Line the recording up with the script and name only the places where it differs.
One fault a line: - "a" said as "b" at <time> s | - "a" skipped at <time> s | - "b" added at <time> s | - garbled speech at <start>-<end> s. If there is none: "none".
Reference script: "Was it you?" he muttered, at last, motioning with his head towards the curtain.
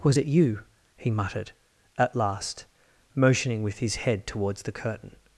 none